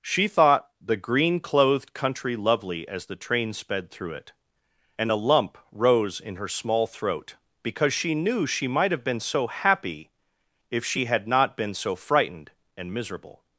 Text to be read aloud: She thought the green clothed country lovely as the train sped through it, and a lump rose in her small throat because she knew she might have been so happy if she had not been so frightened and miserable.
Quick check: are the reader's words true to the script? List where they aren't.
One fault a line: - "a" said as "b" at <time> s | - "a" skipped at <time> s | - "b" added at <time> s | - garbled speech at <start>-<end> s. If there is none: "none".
none